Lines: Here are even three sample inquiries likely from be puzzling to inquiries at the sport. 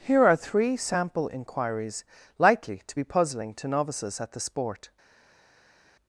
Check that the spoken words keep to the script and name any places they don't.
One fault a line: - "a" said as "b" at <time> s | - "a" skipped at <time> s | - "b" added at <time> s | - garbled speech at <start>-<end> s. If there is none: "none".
- "even" skipped at 0.3 s
- "from" said as "to" at 2.9 s
- "inquiries" said as "novices" at 3.7 s